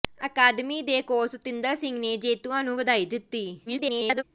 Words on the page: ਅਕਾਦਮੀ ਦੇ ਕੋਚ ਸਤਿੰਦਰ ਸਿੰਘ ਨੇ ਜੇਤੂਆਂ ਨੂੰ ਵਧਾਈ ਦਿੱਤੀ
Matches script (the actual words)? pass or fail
fail